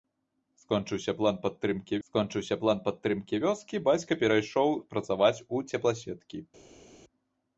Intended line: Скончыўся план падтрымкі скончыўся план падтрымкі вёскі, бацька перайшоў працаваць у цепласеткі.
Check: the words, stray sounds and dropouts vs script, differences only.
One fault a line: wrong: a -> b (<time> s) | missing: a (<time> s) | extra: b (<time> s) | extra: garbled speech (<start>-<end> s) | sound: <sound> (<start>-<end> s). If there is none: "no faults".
no faults